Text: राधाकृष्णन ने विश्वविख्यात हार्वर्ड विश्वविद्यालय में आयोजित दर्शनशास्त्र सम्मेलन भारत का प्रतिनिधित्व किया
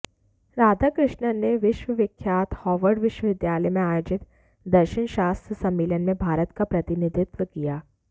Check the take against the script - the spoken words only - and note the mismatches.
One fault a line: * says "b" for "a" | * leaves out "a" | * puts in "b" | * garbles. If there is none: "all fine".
* puts in "में"